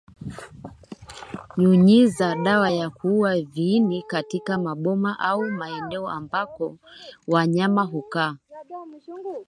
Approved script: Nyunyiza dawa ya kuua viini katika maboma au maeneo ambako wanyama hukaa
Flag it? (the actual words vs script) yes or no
no